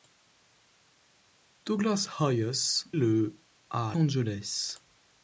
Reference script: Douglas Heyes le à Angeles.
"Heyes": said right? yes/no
yes